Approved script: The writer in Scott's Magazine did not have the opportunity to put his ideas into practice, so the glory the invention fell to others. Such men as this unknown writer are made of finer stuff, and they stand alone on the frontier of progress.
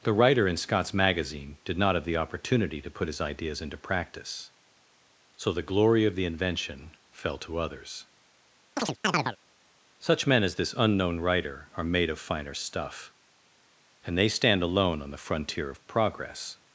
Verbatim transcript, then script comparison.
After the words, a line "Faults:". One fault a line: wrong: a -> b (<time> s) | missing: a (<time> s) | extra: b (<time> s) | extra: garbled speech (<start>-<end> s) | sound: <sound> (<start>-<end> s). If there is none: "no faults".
The writer in Scott's Magazine did not have the opportunity to put his ideas into practice, so the glory of the invention fell to others. Such men as this unknown writer are made of finer stuff, and they stand alone on the frontier of progress.
Faults:
extra: of (6.0 s)
sound: chirp (8.8-9.4 s)